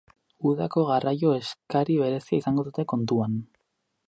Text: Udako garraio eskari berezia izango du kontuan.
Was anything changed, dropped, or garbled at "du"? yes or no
yes